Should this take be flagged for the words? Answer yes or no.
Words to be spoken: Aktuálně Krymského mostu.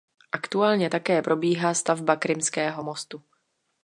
yes